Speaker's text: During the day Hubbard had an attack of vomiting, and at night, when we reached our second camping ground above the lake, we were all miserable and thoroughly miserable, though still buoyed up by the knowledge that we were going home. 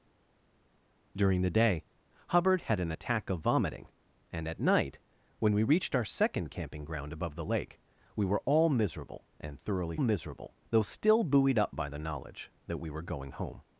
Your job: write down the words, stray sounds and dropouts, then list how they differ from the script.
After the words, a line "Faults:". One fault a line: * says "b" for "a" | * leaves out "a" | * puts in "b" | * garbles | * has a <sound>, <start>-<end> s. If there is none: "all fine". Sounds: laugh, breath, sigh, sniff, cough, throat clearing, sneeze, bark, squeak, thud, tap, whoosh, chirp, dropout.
During the day Hubbard had an attack of vomiting, and at night, when we reached our second camping ground above the lake, we were all miserable and thoroughly miserable, though still buoyed up by the knowledge that we were going home.
Faults:
all fine